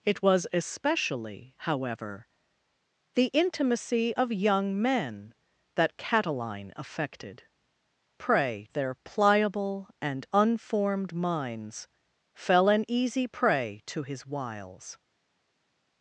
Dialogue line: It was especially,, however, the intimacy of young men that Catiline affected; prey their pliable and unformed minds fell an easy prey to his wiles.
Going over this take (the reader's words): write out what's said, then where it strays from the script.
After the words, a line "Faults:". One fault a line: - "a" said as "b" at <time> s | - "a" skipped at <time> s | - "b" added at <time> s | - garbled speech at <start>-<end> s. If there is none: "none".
It was especially,, however, the intimacy of young men that Catiline affected; prey their pliable and unformed minds fell an easy prey to his wiles.
Faults:
none